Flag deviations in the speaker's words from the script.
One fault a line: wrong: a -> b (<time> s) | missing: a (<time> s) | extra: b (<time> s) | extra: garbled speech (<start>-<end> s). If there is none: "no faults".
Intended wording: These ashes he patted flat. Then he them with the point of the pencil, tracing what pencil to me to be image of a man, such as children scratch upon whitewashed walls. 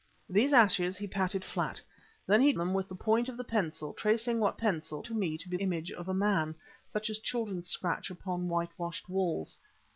no faults